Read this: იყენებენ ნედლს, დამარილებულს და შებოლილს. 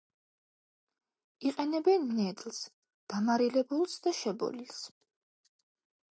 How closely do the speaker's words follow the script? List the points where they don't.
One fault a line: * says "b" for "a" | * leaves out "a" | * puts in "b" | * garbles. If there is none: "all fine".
all fine